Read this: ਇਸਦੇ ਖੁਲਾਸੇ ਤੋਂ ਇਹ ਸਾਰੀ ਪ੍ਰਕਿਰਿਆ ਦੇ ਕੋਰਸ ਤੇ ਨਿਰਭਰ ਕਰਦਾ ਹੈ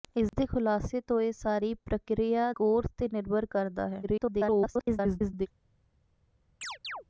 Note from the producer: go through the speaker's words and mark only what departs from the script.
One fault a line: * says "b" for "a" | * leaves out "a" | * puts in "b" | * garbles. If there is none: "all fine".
* leaves out "ਦੇ"
* garbles